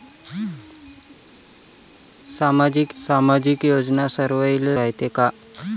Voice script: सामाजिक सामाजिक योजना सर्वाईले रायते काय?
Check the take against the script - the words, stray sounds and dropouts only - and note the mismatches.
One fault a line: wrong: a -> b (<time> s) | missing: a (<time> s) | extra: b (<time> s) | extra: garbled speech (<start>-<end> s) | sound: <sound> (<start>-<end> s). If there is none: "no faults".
no faults